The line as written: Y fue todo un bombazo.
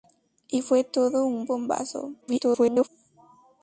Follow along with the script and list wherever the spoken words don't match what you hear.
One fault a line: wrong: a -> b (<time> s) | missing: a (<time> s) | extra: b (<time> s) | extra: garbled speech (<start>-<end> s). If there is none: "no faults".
extra: garbled speech (2.2-2.9 s)